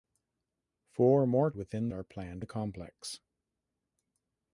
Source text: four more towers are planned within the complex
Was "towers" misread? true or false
true